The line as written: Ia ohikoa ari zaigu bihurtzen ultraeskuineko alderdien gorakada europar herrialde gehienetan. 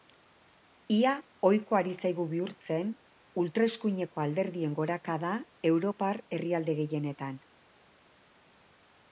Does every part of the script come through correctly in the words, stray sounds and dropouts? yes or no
yes